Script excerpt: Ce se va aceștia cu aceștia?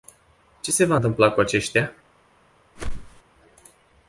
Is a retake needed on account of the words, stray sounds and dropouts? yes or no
yes